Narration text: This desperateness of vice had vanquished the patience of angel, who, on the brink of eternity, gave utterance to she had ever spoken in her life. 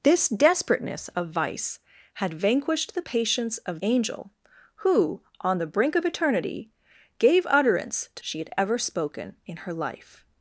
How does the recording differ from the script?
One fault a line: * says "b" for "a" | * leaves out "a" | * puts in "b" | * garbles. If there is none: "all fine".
all fine